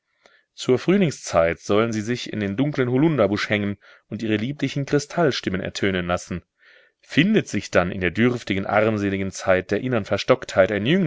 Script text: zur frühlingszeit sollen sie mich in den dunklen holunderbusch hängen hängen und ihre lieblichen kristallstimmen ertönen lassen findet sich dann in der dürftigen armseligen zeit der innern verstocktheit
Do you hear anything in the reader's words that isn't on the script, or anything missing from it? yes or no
yes